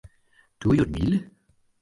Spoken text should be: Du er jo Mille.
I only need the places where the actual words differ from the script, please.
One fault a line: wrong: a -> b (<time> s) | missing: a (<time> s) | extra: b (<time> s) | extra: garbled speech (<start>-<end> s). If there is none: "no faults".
no faults